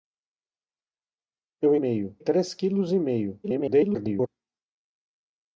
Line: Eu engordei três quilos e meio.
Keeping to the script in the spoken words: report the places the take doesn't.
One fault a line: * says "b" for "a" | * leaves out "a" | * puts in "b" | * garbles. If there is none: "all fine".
* says "meio" for "engordei"
* garbles